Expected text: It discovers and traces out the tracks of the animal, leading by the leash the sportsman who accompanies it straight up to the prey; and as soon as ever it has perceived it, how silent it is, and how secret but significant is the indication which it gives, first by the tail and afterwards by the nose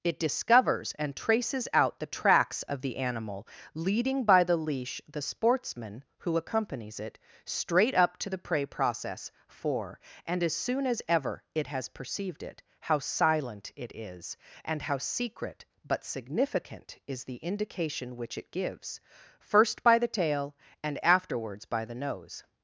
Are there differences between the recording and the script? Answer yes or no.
yes